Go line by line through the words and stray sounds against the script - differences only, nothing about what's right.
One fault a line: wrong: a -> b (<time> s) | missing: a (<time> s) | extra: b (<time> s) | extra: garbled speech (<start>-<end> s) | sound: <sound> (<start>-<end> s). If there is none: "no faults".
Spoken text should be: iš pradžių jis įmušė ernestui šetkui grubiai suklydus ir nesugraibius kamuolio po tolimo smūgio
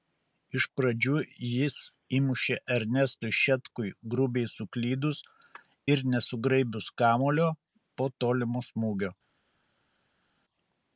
no faults